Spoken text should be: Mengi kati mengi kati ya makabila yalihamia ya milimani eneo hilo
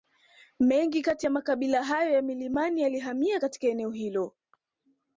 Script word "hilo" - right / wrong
right